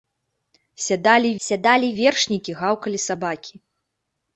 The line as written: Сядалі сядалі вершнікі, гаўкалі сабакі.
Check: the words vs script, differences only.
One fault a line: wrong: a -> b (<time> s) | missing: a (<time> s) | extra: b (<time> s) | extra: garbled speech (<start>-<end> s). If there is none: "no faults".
no faults